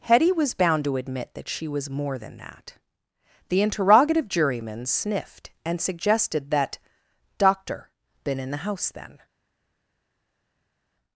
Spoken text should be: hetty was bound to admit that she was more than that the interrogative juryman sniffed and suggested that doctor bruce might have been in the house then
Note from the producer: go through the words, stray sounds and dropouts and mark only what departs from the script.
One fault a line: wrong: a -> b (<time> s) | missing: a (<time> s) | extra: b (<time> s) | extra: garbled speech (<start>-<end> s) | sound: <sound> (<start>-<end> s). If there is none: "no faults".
missing: bruce might have (7.9 s)